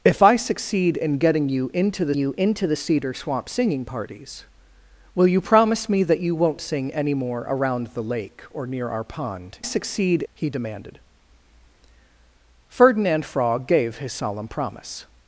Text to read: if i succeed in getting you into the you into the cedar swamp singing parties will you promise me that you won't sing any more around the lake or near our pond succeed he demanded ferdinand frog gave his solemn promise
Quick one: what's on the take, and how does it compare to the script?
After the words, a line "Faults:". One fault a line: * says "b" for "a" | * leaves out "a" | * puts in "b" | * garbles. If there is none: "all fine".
if i succeed in getting you into the you into the cedar swamp singing parties will you promise me that you won't sing any more around the lake or near our pond succeed he demanded ferdinand frog gave his solemn promise
Faults:
all fine